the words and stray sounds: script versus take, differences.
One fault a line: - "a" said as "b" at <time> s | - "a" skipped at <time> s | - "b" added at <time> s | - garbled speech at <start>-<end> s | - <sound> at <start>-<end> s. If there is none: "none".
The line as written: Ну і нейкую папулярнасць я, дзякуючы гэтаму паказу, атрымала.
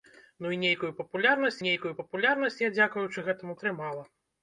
- "нейкую папулярнасць" added at 1.6 s
- "паказу" skipped at 3.6 s